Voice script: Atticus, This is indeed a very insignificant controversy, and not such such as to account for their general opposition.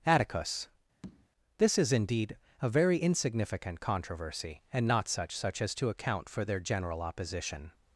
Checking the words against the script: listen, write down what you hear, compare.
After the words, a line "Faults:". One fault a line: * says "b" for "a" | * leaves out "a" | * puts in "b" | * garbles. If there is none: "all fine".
Atticus, This is indeed a very insignificant controversy, and not such such as to account for their general opposition.
Faults:
all fine